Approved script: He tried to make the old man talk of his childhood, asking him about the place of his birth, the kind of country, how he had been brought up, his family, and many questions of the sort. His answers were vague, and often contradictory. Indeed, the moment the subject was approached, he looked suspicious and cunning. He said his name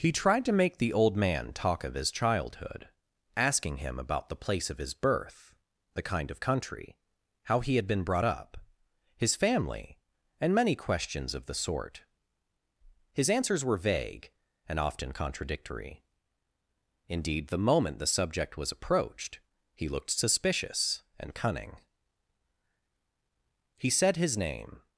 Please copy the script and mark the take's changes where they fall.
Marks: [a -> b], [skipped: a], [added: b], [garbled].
He tried to make the old man talk of his childhood, asking him about the place of his birth, the kind of country, how he had been brought up, his family, and many questions of the sort. His answers were vague, and often contradictory. Indeed, the moment the subject was approached, he looked suspicious and cunning. He said his name